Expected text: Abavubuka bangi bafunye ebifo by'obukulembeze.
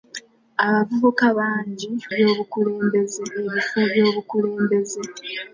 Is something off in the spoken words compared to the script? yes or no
yes